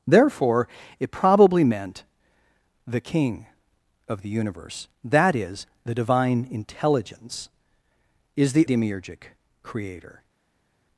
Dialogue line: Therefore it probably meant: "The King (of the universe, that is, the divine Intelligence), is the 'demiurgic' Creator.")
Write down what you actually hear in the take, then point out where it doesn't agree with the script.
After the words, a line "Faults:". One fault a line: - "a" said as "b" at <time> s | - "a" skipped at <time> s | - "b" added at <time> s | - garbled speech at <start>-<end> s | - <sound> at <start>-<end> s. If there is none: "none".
Therefore it probably meant: "The King (of the universe, that is, the divine Intelligence), is the 'demiurgic' Creator.")
Faults:
none